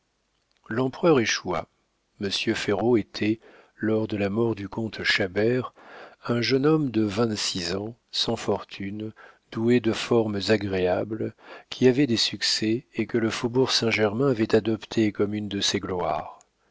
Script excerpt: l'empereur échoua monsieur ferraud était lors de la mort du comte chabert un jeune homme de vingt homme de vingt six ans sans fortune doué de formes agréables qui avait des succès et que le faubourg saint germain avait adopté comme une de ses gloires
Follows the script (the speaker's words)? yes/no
no